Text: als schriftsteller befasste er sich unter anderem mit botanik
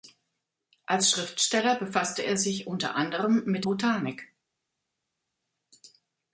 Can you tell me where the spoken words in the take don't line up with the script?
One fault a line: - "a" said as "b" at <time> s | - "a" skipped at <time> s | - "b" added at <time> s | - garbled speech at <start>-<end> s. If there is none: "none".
none